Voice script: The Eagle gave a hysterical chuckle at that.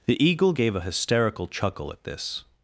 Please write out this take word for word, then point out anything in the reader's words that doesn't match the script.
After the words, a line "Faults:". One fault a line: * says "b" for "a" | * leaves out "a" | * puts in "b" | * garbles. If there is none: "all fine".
The Eagle gave a hysterical chuckle at this.
Faults:
* says "this" for "that"